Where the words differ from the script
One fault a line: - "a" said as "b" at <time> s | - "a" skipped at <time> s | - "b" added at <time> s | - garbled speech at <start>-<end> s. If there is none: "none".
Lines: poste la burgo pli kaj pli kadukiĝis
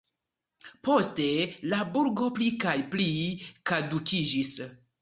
none